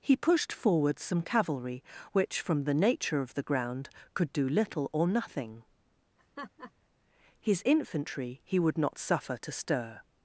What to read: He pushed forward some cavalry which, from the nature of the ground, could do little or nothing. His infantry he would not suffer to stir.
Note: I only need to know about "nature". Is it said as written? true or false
true